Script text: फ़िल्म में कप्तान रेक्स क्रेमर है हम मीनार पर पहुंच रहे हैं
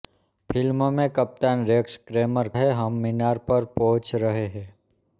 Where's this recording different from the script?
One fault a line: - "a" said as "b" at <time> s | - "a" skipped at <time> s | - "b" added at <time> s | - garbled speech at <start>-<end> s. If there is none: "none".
none